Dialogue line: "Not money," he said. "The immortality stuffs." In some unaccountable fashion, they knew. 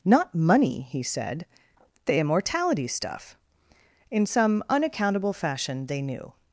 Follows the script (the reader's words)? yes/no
no